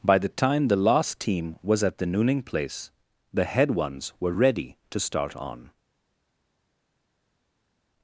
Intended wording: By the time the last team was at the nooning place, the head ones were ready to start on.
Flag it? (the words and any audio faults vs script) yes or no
no